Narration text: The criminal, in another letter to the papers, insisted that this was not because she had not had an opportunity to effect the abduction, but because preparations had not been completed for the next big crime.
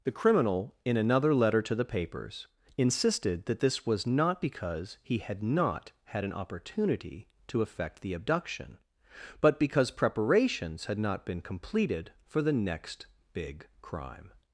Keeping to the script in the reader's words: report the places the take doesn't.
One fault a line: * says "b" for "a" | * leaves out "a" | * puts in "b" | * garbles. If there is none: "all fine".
* says "he" for "she"